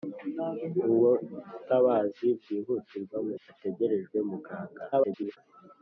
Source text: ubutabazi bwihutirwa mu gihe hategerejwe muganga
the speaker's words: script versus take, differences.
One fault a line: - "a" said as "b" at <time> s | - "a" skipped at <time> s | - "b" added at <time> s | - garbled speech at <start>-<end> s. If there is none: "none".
- "gihe" skipped at 3.4 s
- garbled speech at 4.9-5.4 s